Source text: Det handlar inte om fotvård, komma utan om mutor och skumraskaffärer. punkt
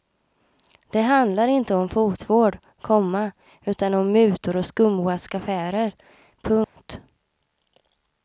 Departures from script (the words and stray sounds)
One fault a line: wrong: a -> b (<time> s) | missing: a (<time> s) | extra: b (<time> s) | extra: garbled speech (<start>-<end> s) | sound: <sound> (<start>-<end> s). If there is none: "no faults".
sound: dropout (6.6-6.8 s)